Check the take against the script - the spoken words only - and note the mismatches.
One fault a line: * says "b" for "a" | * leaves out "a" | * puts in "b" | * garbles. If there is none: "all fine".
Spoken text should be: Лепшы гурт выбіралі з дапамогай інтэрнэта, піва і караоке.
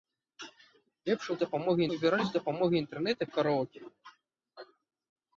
* says "дапамогай" for "гурт"
* leaves out "піва"